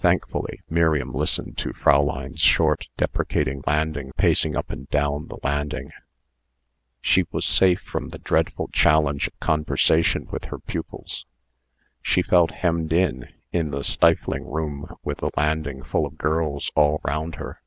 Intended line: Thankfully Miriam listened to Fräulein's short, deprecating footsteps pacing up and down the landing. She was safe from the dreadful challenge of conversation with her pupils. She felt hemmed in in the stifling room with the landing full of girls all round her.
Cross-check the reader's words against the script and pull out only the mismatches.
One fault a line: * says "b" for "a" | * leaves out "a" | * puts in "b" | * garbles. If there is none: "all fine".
* says "landing" for "footsteps"